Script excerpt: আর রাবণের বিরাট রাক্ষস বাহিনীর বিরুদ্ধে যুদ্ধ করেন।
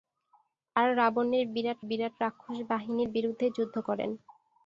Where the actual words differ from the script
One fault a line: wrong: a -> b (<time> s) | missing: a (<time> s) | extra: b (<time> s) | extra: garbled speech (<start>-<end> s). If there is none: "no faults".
extra: বিরাট (1.9 s)